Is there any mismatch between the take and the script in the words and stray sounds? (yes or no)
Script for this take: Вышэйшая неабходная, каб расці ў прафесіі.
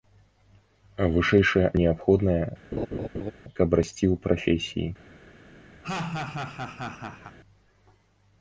yes